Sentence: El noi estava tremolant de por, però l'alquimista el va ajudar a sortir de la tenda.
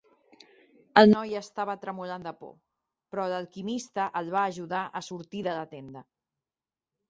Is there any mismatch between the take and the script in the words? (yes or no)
no